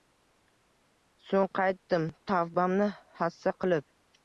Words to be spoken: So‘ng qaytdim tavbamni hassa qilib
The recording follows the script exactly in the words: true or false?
true